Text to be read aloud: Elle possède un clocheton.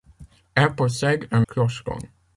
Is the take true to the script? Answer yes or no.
yes